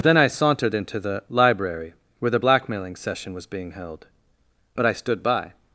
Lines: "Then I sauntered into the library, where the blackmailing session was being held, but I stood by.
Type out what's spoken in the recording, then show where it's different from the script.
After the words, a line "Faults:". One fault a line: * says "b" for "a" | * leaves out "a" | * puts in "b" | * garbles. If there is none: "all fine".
"Then I sauntered into the library, where the blackmailing session was being held, but I stood by.
Faults:
all fine